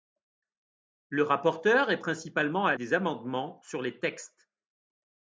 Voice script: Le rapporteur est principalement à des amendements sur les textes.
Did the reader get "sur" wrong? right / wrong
right